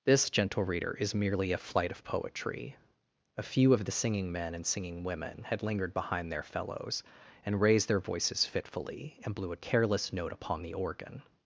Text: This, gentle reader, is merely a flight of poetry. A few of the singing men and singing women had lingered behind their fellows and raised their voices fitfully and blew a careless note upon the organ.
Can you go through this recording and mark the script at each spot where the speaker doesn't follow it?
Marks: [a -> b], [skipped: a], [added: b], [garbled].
This, gentle reader, is merely a flight of poetry. A few of the singing men and singing women had lingered behind their fellows and raised their voices fitfully and blew a careless note upon the organ.